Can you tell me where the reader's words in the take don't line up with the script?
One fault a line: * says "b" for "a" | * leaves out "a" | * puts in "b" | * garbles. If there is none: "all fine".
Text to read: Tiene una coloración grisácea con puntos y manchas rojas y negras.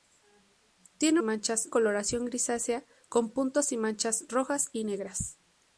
* says "manchas" for "una"